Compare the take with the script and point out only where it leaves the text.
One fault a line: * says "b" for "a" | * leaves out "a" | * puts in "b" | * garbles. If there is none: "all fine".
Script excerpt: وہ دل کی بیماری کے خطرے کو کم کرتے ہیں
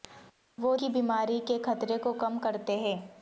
* leaves out "دل"